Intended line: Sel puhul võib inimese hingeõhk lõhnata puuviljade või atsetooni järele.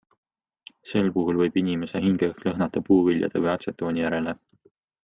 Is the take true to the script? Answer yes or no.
yes